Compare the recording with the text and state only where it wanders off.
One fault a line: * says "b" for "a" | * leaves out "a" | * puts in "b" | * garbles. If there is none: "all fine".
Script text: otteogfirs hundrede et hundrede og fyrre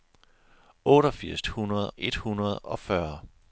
all fine